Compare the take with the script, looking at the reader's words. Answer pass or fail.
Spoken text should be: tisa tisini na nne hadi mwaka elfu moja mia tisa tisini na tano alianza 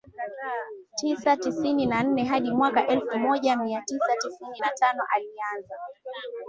pass